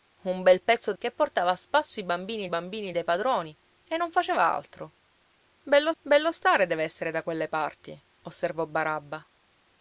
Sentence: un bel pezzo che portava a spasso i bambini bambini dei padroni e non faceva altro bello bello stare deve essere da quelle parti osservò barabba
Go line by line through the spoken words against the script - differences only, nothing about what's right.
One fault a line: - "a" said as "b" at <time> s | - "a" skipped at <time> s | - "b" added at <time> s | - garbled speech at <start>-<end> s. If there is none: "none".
none